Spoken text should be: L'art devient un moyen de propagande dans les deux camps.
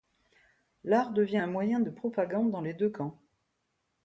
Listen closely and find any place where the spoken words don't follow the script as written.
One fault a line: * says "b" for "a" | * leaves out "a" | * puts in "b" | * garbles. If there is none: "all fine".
all fine